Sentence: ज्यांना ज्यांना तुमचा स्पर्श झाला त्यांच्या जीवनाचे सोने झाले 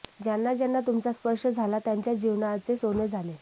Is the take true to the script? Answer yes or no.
yes